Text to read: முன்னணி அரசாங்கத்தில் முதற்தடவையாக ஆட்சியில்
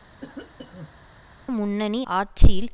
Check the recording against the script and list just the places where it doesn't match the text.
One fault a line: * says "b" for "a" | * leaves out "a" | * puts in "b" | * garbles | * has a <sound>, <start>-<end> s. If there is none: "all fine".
* has a cough, 0.2-1.1 s
* leaves out "அரசாங்கத்தில் முதற்தடவையாக"